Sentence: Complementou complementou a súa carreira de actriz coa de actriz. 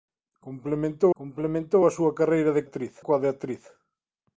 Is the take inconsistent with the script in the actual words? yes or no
no